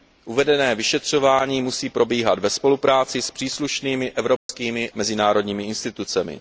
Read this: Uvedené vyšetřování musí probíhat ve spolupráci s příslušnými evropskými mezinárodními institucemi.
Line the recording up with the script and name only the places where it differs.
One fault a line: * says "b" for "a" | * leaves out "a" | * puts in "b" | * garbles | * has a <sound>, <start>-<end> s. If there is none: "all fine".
* has a dropout, 4.4-4.5 s